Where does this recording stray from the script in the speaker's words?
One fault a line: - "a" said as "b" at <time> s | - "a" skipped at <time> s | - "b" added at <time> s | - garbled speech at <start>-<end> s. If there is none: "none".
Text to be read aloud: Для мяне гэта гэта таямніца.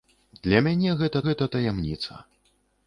none